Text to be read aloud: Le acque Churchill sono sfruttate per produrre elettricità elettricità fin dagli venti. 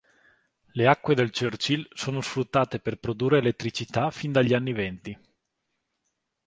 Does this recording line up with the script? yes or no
no